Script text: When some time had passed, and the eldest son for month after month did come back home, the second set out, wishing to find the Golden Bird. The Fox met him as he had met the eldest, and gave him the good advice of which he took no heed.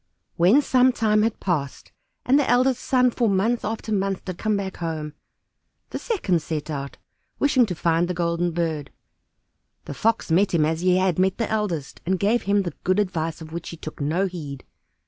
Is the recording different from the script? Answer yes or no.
no